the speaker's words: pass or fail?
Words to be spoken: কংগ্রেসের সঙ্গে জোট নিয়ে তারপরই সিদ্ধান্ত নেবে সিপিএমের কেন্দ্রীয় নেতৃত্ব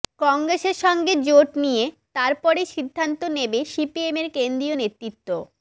pass